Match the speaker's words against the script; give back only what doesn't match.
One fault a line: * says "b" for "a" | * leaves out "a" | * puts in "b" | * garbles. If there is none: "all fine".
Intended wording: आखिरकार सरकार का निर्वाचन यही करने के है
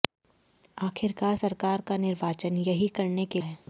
all fine